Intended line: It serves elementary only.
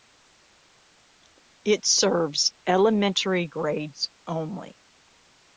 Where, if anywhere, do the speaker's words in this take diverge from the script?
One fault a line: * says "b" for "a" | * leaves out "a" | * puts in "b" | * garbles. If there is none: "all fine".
* puts in "grades"